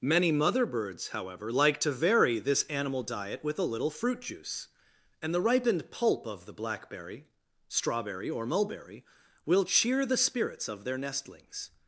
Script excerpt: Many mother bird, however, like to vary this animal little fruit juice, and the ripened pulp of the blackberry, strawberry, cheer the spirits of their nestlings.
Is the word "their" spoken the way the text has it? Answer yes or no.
yes